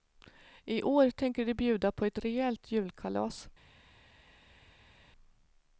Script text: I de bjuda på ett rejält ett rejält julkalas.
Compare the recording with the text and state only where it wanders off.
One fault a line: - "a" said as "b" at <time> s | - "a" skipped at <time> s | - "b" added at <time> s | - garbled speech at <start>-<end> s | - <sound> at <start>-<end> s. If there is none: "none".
- "år tänker" added at 0.8 s
- "ett rejält" skipped at 2.7 s